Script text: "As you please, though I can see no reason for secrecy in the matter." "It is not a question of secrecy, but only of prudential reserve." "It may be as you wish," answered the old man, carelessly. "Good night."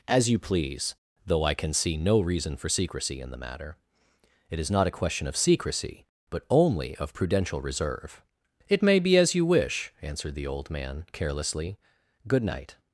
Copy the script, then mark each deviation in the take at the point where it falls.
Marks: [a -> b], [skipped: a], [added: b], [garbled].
"As you please, though I can see no reason for secrecy in the matter." "It is not a question of secrecy, but only of prudential reserve." "It may be as you wish," answered the old man, carelessly. "Good night."